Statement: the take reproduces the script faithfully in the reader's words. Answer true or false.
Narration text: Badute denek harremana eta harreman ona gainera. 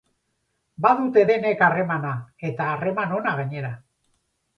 true